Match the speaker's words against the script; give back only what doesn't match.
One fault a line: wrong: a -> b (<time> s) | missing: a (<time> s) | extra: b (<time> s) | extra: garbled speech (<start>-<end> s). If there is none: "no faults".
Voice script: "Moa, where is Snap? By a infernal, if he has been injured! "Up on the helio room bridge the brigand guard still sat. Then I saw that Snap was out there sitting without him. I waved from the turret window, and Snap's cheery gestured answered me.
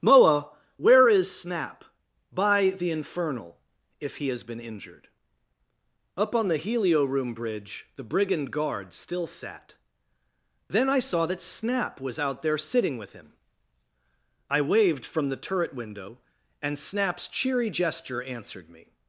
wrong: a -> the (2.7 s)
wrong: without -> with (13.0 s)
wrong: gestured -> gesture (17.7 s)